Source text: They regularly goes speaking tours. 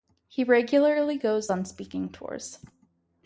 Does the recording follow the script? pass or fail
fail